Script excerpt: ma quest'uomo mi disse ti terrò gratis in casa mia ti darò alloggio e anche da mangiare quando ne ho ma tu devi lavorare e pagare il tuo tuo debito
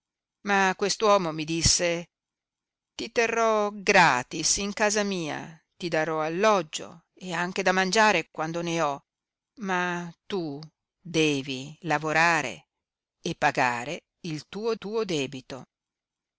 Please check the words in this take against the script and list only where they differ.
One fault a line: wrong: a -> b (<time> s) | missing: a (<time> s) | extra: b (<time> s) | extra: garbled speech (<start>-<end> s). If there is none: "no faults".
no faults